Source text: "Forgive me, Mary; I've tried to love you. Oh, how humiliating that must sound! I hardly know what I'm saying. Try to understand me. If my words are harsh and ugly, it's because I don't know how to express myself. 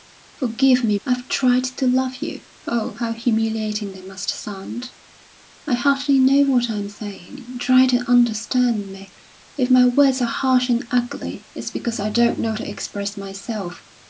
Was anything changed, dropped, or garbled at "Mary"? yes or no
yes